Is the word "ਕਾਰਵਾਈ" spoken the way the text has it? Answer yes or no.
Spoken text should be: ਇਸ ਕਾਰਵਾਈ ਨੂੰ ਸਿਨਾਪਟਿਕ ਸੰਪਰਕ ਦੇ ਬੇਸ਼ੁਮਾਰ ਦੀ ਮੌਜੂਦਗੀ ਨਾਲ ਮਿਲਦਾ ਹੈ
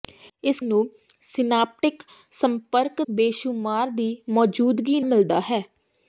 no